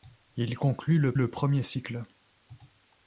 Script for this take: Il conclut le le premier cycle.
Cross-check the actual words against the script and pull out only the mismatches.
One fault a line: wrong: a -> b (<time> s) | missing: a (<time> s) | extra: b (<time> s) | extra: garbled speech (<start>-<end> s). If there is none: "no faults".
no faults